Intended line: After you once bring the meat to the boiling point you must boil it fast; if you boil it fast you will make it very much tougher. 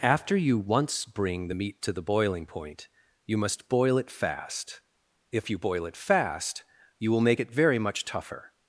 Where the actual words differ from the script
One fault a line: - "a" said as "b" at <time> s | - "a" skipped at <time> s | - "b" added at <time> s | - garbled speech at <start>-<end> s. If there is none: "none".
none